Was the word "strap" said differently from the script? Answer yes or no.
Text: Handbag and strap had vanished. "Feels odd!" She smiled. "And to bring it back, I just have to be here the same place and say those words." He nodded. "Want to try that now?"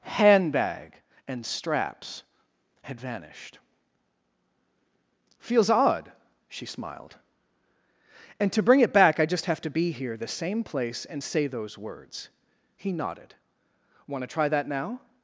yes